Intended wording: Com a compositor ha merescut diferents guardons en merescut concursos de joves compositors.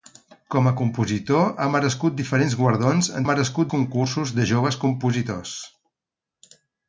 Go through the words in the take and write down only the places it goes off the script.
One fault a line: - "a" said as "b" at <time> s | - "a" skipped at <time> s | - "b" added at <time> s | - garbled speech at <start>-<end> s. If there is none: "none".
none